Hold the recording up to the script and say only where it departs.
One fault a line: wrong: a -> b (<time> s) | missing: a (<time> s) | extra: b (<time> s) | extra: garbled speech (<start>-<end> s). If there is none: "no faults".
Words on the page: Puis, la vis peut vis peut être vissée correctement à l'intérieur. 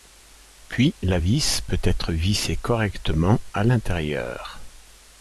missing: vis peut (1.8 s)